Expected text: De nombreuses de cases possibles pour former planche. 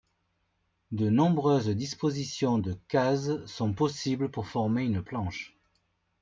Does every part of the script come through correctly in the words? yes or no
no